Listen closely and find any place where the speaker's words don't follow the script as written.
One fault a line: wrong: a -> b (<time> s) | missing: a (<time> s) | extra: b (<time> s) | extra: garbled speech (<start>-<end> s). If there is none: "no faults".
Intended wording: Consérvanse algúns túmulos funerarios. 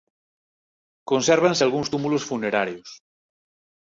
no faults